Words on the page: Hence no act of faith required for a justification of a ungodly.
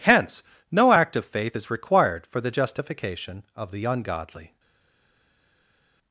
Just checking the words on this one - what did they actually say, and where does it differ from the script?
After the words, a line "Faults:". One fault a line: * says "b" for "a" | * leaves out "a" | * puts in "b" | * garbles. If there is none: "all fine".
Hence no act of faith is required for the justification of the ungodly.
Faults:
* puts in "is"
* says "the" for "a"
* says "the" for "a"